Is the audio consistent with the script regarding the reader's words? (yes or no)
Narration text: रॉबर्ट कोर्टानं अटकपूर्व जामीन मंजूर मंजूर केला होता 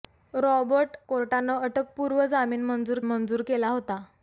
yes